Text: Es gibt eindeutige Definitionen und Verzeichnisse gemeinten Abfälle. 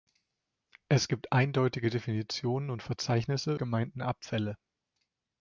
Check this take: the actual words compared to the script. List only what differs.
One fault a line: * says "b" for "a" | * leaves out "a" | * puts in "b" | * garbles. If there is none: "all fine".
all fine